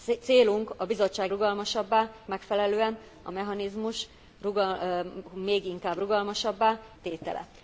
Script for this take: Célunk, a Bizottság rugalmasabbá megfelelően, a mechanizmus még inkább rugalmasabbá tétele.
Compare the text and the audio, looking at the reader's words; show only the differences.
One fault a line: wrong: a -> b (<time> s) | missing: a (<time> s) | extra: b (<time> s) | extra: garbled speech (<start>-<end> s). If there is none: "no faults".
no faults